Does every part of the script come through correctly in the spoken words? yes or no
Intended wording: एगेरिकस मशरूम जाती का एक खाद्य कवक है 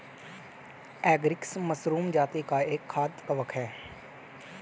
yes